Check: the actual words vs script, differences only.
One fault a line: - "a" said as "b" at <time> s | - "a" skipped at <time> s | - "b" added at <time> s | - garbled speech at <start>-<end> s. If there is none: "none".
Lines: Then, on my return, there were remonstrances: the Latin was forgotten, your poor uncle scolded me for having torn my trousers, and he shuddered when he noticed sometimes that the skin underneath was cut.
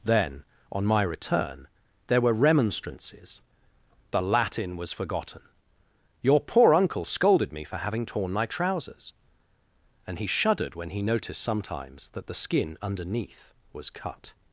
none